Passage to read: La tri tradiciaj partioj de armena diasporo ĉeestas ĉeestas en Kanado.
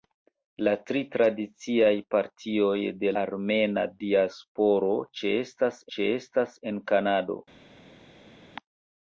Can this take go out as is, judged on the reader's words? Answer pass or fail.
pass